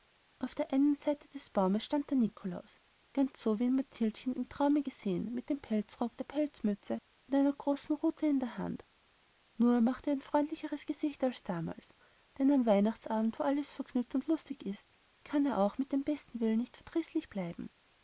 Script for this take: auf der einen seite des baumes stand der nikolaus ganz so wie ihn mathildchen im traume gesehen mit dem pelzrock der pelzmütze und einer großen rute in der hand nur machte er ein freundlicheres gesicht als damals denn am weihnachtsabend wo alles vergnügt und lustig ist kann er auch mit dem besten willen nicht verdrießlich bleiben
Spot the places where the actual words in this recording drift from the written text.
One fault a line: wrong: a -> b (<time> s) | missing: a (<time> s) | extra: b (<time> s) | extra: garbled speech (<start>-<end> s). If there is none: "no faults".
no faults